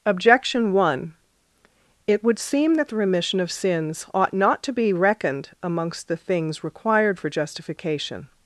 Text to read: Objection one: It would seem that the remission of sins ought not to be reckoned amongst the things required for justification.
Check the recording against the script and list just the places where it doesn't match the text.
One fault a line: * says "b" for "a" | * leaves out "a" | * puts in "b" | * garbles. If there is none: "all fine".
all fine